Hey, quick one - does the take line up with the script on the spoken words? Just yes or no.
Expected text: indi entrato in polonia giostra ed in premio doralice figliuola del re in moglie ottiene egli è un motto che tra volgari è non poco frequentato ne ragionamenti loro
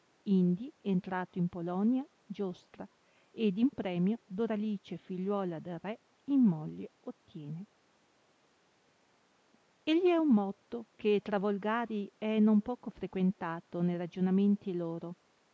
yes